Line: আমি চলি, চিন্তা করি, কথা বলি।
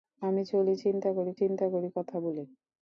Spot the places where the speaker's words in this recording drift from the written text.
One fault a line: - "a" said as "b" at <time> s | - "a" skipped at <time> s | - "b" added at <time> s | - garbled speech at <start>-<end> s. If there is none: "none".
- "চিন্তা করি" added at 1.4 s